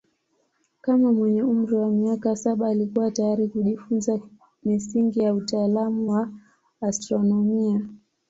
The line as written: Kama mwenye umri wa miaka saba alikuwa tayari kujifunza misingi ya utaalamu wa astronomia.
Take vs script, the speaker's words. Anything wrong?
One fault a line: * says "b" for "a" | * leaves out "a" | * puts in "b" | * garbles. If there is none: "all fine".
all fine